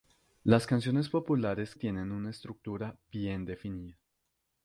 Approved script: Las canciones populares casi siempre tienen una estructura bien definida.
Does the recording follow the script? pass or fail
fail